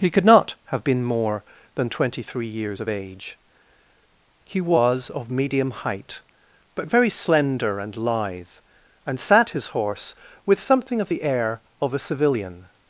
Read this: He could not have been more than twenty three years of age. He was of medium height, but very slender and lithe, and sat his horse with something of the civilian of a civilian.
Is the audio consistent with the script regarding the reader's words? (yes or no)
no